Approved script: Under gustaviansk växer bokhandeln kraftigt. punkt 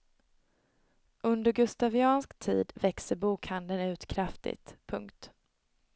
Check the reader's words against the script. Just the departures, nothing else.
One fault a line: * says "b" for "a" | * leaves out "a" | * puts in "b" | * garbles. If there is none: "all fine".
* puts in "tid"
* puts in "ut"